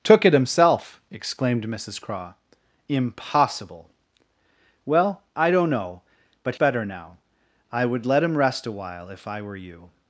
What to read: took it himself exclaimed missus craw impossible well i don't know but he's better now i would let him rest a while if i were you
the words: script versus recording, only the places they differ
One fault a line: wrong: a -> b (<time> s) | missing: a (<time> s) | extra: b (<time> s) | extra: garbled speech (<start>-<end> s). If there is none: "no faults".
missing: he's (6.5 s)